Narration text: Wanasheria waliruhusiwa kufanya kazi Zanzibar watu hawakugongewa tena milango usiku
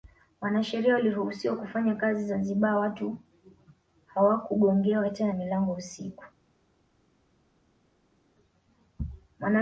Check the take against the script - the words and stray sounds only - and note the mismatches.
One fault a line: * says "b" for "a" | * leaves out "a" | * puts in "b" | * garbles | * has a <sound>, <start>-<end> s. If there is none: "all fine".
all fine